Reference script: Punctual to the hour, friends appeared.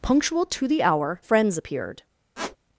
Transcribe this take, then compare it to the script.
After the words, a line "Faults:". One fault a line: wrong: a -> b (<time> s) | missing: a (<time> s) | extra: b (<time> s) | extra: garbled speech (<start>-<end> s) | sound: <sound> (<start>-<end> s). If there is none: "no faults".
Punctual to the hour, friends appeared.
Faults:
sound: squeak (2.4-2.6 s)